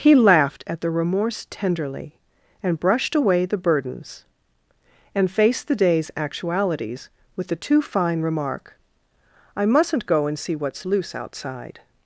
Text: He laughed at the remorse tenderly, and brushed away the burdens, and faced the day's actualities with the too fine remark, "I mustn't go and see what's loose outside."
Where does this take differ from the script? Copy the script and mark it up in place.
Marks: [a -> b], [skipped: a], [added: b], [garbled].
He laughed at the remorse tenderly, and brushed away the burdens, and faced the day's actualities with the too fine remark, "I mustn't go and see what's loose outside."